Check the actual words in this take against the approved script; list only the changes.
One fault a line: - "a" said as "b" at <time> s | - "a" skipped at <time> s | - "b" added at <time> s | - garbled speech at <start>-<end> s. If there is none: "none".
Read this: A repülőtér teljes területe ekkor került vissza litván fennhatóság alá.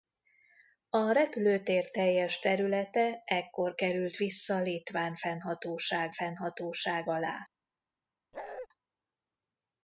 - "fennhatóság" added at 6.1 s